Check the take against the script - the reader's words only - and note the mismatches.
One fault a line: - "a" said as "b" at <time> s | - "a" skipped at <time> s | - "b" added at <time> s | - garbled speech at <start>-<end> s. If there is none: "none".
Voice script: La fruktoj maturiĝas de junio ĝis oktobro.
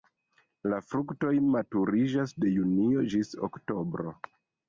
none